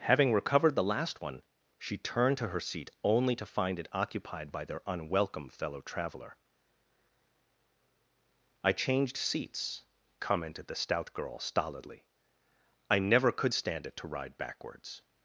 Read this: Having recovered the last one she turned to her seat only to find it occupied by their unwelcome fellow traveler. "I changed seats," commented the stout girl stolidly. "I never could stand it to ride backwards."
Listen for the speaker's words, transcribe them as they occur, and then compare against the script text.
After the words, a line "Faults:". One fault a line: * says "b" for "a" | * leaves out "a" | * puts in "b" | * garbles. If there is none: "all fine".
Having recovered the last one she turned to her seat only to find it occupied by their unwelcome fellow traveler. "I changed seats," commented the stout girl stolidly. "I never could stand it to ride backwards."
Faults:
all fine